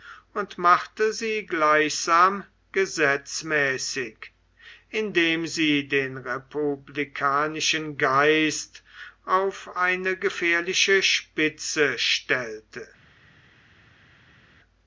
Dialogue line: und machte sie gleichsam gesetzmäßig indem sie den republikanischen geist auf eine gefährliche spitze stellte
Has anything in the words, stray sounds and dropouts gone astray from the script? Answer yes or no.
no